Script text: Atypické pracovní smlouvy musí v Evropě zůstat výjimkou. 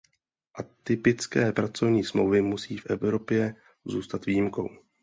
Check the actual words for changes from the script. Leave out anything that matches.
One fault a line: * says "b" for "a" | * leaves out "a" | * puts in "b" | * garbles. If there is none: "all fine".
all fine